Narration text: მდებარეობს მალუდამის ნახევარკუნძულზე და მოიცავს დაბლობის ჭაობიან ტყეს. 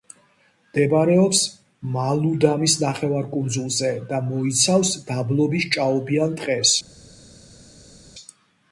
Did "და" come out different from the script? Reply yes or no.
no